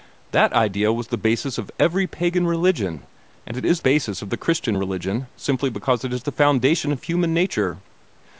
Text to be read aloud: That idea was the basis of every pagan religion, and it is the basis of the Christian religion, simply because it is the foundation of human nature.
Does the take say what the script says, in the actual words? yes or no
no